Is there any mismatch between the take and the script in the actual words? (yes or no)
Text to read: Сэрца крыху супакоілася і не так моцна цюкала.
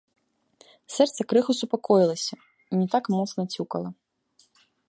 no